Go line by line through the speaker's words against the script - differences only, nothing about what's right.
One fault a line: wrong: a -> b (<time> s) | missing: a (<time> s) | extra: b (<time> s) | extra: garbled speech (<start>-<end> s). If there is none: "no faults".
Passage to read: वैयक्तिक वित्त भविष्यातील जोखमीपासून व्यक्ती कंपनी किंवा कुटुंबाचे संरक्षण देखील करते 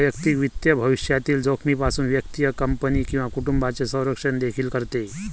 no faults